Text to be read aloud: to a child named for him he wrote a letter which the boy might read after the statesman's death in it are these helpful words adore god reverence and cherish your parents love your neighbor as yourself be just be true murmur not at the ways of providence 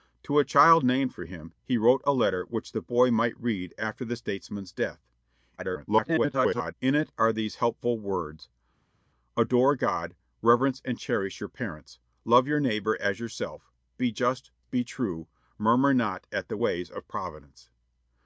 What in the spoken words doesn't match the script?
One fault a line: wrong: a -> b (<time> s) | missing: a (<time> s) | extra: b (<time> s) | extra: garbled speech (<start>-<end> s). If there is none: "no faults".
extra: garbled speech (5.6-6.7 s)